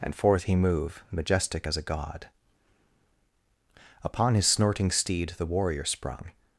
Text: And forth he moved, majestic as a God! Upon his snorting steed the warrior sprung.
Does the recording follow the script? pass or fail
fail